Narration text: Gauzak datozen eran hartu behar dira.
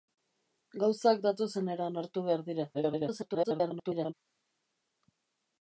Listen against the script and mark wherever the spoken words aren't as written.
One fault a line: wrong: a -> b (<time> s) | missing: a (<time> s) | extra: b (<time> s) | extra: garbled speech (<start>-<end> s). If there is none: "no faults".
extra: garbled speech (2.7-4.1 s)